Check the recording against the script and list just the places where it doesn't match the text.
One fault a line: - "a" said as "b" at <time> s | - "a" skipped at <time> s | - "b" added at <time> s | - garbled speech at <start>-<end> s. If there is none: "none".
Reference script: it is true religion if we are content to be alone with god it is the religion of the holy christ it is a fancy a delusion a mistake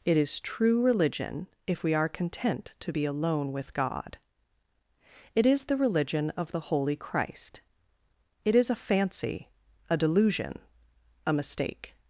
none